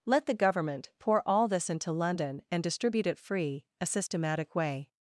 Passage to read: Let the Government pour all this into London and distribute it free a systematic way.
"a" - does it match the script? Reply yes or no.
yes